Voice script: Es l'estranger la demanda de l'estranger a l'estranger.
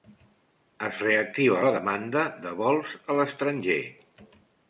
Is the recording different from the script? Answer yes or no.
yes